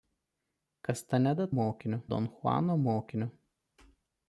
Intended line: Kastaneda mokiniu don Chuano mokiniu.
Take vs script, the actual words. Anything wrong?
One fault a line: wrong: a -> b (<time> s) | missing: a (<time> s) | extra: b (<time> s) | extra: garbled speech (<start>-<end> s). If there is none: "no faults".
no faults